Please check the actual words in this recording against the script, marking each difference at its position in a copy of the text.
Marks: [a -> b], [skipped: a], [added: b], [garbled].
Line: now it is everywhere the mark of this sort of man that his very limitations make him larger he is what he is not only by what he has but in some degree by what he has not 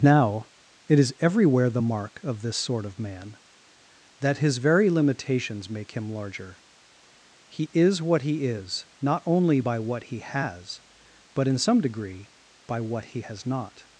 now it is everywhere the mark of this sort of man that his very limitations make him larger he is what he is not only by what he has but in some degree by what he has not